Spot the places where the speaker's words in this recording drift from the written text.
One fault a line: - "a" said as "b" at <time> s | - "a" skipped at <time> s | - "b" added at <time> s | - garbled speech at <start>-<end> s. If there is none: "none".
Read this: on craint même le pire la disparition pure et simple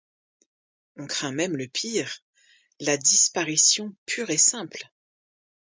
none